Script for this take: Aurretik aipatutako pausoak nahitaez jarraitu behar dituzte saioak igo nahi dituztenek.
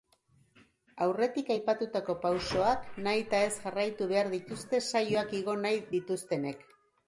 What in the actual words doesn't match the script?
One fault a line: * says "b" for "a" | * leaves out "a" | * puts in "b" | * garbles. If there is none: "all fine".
all fine